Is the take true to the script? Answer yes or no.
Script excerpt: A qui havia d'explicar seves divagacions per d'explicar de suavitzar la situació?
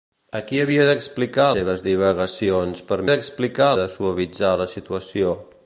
yes